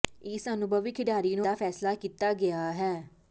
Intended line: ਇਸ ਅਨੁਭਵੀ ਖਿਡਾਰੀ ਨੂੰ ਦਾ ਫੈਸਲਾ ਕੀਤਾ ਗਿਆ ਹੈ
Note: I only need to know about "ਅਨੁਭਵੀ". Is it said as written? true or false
true